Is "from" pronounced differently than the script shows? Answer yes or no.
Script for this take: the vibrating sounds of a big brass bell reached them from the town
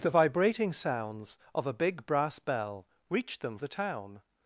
yes